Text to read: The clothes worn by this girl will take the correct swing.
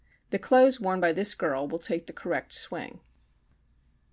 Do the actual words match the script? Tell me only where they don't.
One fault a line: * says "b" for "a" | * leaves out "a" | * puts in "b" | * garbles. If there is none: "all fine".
all fine